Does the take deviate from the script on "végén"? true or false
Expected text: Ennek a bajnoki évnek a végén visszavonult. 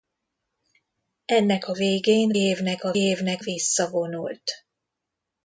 true